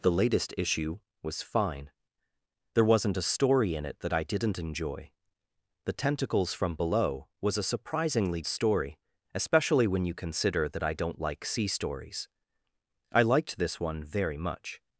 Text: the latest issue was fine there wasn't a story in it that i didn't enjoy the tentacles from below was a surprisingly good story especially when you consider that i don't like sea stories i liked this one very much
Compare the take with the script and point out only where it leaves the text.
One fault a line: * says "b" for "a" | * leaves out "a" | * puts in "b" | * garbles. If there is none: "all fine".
* leaves out "good"